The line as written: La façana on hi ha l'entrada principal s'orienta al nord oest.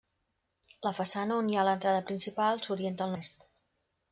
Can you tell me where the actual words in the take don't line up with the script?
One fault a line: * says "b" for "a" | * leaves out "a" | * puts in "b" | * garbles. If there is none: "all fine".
* leaves out "nord"